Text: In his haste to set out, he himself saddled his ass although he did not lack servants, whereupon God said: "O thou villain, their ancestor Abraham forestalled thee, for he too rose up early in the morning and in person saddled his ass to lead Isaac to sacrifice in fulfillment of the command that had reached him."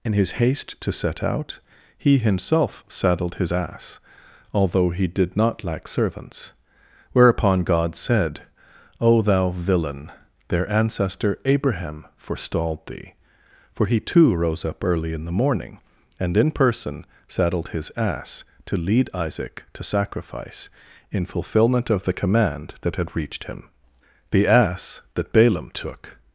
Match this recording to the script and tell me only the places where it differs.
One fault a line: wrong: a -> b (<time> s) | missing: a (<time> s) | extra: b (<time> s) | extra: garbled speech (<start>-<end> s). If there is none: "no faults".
extra: The ass that Balaam took (24.3 s)